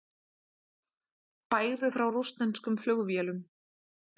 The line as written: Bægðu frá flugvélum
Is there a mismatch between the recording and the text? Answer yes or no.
yes